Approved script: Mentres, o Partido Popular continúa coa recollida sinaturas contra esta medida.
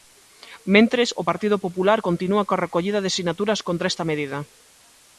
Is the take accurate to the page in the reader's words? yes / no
no